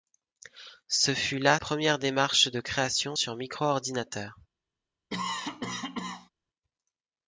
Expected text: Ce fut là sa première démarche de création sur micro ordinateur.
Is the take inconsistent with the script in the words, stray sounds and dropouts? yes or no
yes